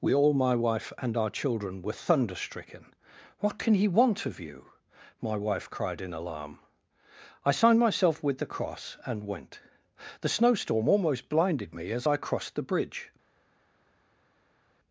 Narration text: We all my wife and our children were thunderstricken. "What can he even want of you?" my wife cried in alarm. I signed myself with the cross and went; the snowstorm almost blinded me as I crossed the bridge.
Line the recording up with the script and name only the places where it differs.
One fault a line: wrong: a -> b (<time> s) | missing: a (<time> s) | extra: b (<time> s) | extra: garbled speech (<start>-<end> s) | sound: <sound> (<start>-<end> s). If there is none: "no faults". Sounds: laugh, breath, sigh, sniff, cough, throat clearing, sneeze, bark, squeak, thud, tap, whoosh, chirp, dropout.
missing: even (3.9 s)